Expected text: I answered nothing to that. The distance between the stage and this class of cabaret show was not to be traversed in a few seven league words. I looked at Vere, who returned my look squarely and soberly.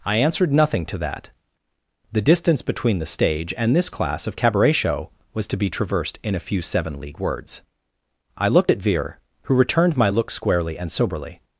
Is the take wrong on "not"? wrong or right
wrong